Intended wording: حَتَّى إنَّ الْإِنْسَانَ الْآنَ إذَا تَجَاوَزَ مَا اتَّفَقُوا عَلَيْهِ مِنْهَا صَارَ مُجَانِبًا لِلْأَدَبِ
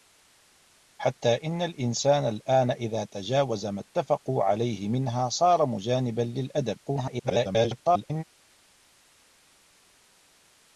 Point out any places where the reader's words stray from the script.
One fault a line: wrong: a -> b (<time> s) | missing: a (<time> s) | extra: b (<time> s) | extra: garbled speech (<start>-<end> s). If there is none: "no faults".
extra: garbled speech (6.8-8.2 s)